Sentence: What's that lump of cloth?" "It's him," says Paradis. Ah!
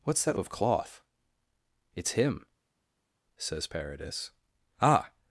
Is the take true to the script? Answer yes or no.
no